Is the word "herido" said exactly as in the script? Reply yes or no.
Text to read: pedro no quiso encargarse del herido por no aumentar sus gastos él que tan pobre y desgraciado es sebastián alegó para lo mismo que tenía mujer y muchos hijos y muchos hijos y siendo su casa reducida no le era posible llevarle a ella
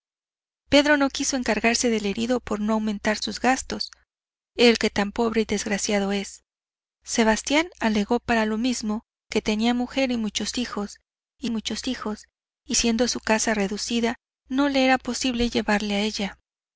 yes